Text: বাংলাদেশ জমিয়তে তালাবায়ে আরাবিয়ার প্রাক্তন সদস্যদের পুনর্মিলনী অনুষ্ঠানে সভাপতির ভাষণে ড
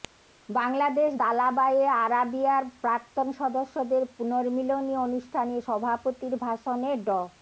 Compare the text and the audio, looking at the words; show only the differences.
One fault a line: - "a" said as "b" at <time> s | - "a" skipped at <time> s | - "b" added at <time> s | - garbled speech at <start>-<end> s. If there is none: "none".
- "জমিয়তে" skipped at 1.1 s